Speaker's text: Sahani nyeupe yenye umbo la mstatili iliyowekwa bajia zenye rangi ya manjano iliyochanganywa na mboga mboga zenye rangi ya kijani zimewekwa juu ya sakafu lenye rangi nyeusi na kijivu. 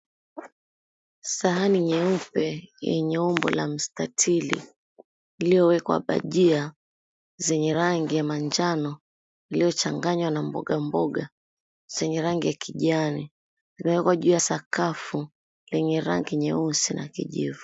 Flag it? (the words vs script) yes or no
no